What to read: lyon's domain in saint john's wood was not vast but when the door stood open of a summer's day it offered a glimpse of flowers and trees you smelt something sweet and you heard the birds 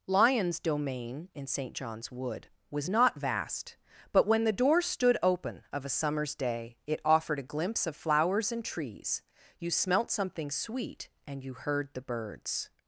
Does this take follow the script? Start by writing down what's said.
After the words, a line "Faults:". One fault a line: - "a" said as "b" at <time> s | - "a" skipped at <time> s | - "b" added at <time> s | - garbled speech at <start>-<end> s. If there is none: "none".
lyon's domain in saint john's wood was not vast but when the door stood open of a summer's day it offered a glimpse of flowers and trees you smelt something sweet and you heard the birds
Faults:
none